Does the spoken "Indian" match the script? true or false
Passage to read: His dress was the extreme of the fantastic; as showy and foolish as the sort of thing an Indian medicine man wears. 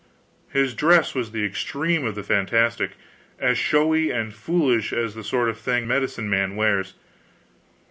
false